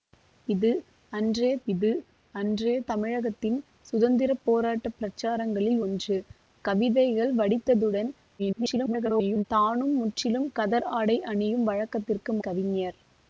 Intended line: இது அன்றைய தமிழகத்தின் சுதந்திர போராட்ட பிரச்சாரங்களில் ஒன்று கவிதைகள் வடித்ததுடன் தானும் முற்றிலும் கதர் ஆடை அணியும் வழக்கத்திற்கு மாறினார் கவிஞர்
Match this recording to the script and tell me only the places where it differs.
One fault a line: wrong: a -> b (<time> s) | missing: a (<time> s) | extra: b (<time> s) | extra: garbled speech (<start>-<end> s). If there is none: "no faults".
extra: இது அன்றைய (1.7 s)
extra: garbled speech (8.4-9.4 s)
missing: மாறினார் (12.3 s)